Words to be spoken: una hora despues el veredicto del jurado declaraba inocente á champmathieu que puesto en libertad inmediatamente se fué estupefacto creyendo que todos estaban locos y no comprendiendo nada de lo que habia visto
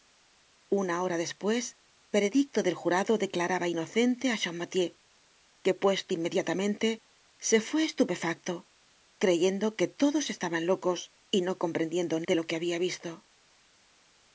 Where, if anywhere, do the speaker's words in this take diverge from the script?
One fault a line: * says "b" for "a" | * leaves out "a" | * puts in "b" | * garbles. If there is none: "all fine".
* leaves out "el"
* leaves out "en libertad"
* leaves out "nada"